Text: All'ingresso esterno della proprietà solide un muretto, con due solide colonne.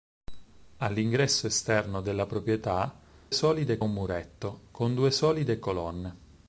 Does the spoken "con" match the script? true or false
true